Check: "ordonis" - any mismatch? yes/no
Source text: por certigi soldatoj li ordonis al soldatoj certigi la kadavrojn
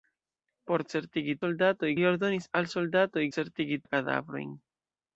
no